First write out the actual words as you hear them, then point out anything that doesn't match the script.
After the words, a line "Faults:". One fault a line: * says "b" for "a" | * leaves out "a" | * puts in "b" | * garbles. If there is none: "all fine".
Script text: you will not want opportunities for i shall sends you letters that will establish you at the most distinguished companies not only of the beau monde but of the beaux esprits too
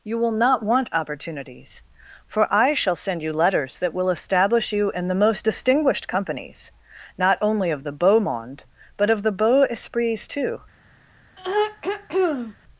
you will not want opportunities for i shall send you letters that will establish you in the most distinguished companies not only of the beau monde but of the beaux esprits too
Faults:
* says "send" for "sends"
* says "in" for "at"